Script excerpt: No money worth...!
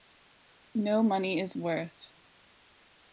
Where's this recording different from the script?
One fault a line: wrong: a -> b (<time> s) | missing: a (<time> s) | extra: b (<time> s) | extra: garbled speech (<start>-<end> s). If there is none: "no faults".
extra: is (1.4 s)